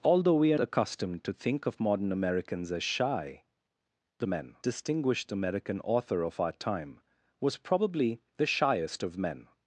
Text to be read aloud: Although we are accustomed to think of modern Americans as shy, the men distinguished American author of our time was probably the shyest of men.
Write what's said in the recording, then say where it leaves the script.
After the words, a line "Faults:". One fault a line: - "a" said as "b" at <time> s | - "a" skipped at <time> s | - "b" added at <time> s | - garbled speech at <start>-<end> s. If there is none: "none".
Although we are accustomed to think of modern Americans as shy, the men distinguished American author of our time was probably the shyest of men.
Faults:
none